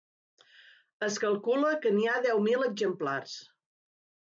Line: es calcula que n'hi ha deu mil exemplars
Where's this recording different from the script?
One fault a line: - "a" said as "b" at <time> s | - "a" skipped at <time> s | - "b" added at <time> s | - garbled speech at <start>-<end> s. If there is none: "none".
none